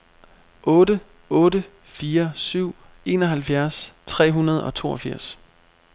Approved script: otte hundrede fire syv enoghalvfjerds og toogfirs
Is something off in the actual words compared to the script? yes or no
yes